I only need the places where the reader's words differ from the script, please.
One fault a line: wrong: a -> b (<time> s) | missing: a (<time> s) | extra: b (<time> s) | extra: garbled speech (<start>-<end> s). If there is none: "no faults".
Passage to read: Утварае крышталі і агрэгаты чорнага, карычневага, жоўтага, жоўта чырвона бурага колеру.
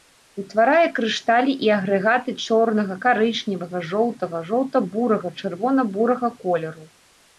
extra: бурага (5.0 s)